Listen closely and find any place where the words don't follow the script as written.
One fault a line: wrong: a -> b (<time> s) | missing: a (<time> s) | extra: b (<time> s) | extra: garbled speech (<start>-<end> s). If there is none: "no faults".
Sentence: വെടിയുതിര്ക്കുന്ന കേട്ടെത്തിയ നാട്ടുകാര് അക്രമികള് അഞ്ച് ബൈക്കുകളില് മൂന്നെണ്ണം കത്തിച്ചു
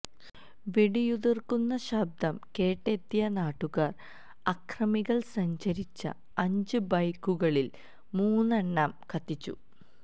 extra: ശബ്ദം (1.8 s)
extra: സഞ്ചരിച്ച (5.3 s)